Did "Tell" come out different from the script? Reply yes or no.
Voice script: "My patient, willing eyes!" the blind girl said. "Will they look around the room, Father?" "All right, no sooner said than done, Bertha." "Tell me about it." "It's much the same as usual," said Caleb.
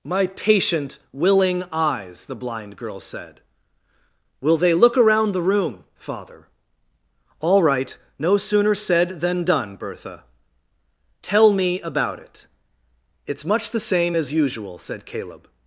no